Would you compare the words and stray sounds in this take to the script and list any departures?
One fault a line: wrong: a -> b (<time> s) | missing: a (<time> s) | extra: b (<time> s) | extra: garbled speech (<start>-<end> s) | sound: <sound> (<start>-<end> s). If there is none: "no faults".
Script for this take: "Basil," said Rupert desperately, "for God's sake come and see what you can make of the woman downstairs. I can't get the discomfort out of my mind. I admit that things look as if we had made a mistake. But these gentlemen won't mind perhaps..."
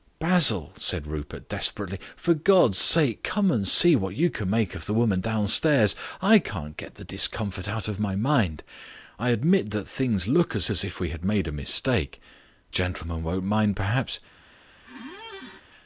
extra: as (10.7 s)
missing: But these (12.2 s)
sound: squeak (14.8-15.6 s)